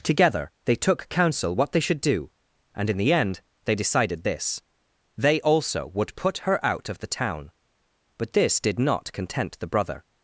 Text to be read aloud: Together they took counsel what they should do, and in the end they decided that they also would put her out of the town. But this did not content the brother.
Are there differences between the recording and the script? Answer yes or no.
yes